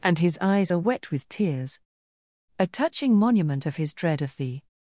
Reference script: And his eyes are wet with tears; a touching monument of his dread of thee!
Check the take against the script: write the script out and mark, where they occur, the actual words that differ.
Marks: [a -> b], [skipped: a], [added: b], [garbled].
And his eyes are wet with tears; a touching monument of his dread of thee!